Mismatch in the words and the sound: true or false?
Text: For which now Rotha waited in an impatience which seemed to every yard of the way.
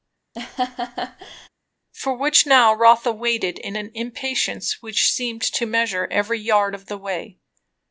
true